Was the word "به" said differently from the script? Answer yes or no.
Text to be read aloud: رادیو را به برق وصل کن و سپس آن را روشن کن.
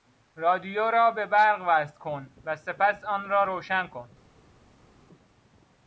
no